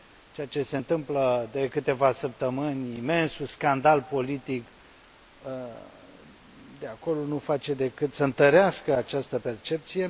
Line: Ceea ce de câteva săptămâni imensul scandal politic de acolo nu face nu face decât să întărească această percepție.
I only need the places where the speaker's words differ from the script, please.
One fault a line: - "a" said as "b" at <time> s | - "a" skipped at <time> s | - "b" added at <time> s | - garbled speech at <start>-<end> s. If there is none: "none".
- "se întâmplă" added at 0.6 s
- "nu face" skipped at 7.7 s